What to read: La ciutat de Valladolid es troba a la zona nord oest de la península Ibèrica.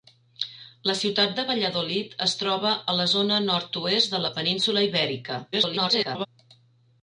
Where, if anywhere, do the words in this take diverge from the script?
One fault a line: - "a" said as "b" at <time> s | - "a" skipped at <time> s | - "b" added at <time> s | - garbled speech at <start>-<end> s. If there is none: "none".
- garbled speech at 5.5-6.3 s